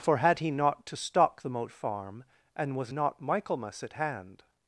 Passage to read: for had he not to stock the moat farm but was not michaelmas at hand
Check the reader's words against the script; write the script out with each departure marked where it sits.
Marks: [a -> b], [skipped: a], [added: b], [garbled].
for had he not to stock the moat farm [but -> and] was not michaelmas at hand